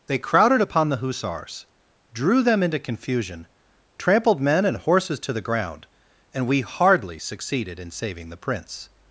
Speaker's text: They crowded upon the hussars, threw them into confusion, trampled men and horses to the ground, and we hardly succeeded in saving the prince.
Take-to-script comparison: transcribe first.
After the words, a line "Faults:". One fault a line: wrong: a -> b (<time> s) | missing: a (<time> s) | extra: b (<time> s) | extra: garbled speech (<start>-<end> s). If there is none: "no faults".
They crowded upon the hussars, drew them into confusion, trampled men and horses to the ground, and we hardly succeeded in saving the prince.
Faults:
wrong: threw -> drew (2.1 s)